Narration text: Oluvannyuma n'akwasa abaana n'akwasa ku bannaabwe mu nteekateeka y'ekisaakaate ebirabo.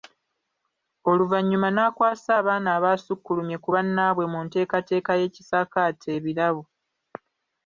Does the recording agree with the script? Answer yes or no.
no